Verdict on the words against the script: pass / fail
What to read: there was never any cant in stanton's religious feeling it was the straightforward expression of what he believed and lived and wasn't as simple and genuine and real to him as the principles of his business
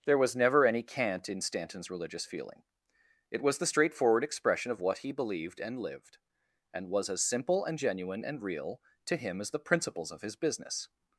fail